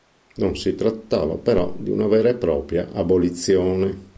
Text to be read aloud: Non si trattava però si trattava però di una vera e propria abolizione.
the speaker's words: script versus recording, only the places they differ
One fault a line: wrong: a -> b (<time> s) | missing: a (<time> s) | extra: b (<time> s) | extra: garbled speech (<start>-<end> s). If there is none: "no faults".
missing: si trattava però (1.8 s)